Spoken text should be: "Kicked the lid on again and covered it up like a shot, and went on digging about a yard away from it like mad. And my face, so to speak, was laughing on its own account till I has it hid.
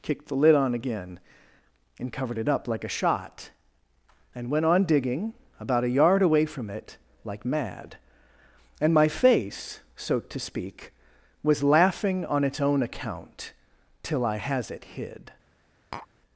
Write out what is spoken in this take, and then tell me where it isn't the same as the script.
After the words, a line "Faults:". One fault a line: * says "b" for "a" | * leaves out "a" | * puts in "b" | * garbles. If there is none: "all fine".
"Kicked the lid on again and covered it up like a shot, and went on digging about a yard away from it like mad. And my face, so to speak, was laughing on its own account till I has it hid.
Faults:
all fine